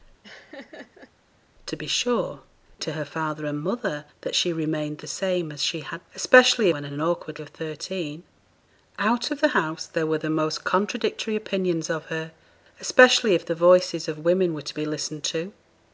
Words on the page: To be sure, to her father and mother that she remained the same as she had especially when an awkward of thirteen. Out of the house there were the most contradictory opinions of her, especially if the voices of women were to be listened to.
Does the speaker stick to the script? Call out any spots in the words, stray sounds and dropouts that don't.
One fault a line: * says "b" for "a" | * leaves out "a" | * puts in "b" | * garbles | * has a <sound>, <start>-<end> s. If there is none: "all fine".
* has a laugh, 0.2-1.1 s